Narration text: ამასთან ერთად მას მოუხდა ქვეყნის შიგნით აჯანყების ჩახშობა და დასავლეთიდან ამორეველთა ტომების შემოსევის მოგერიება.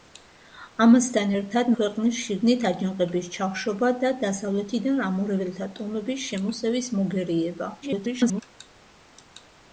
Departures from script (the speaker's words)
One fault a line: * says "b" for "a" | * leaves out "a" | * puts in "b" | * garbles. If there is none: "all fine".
* leaves out "მას მოუხდა"
* garbles